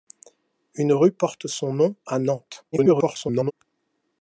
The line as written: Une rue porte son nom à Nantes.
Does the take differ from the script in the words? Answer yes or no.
yes